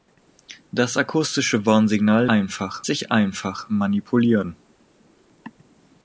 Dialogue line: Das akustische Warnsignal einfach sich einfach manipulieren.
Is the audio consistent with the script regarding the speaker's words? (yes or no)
yes